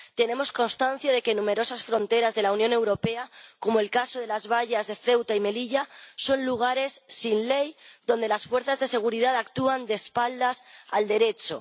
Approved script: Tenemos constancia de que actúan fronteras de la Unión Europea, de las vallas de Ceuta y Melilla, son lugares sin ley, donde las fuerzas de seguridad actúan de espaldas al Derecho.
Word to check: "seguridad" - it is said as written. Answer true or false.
true